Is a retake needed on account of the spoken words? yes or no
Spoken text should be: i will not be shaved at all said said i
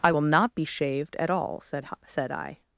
no